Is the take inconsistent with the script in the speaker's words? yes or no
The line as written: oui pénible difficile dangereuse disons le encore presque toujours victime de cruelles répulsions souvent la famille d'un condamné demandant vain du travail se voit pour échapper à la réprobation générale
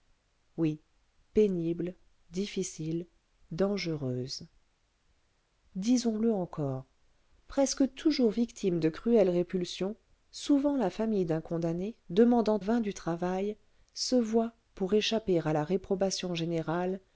no